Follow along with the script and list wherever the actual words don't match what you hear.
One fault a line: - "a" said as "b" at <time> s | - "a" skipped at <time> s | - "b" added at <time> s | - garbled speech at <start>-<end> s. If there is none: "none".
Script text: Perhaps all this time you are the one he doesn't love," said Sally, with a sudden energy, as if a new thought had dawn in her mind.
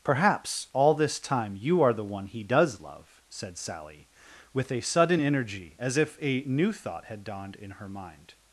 - "doesn't" said as "does" at 2.4 s
- "dawn" said as "dawned" at 7.2 s